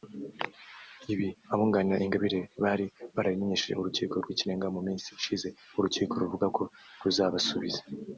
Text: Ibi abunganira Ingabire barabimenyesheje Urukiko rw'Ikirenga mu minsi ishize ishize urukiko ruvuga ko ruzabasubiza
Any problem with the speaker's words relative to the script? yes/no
yes